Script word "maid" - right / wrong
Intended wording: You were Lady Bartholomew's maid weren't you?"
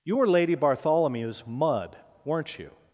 wrong